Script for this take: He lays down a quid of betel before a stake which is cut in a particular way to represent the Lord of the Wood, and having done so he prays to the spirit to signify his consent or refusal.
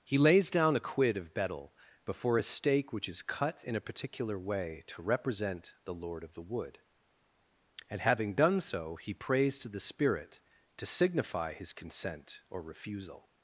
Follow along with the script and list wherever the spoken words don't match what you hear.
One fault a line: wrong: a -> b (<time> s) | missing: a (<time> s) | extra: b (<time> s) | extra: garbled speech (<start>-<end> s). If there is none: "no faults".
no faults